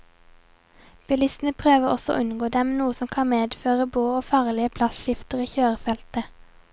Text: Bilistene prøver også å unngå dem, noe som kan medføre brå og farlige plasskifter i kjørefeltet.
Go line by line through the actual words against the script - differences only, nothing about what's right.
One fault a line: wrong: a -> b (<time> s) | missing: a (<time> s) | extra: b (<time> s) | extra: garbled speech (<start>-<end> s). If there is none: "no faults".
no faults